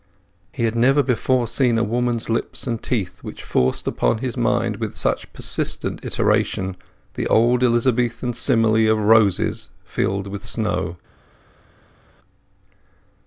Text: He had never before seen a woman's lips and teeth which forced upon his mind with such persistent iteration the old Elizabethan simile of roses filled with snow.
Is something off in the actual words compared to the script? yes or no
no